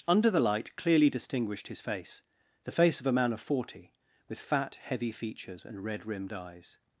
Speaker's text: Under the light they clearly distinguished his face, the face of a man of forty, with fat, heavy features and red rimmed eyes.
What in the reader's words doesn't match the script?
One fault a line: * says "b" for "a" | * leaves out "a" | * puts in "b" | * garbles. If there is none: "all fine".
* leaves out "they"